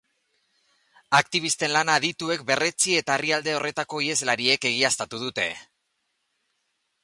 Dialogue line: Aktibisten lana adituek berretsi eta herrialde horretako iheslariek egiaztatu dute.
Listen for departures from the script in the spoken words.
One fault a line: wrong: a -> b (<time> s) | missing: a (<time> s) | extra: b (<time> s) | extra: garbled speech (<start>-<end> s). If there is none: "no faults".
no faults